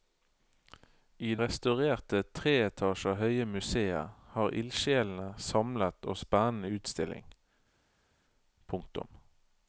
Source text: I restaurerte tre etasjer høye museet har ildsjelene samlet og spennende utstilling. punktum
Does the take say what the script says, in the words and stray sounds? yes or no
yes